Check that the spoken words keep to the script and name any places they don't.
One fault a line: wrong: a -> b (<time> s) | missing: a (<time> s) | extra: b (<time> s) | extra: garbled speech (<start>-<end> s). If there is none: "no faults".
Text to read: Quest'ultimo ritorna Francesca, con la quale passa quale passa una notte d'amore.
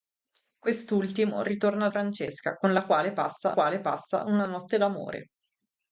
no faults